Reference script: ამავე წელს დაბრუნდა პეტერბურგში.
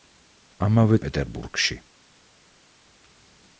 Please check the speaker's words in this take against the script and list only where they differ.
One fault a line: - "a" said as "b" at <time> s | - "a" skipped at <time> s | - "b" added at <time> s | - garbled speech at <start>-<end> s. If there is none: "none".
- "წელს დაბრუნდა" skipped at 1.0 s